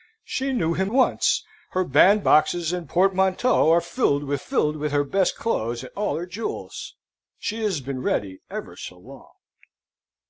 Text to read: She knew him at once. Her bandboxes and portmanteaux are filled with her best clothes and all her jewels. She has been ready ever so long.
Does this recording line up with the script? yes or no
no